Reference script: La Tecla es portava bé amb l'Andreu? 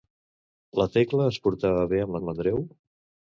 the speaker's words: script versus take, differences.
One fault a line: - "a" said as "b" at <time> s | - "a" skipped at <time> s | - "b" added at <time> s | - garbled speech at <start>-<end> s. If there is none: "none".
- "amb" added at 2.2 s